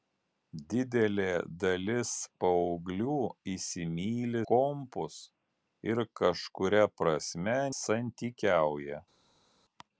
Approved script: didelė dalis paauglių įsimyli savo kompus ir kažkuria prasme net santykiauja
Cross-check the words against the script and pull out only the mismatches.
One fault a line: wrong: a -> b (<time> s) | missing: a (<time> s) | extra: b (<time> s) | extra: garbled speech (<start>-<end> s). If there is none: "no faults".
missing: savo (4.4 s)
missing: net (7.6 s)